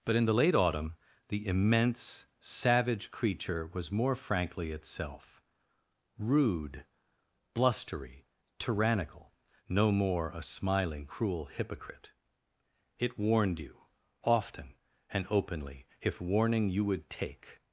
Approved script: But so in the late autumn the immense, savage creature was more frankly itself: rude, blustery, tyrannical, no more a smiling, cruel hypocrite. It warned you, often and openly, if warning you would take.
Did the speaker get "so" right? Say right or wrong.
wrong